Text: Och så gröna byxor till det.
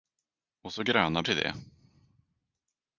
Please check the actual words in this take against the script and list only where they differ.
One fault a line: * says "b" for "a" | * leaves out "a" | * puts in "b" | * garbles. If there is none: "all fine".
* leaves out "byxor"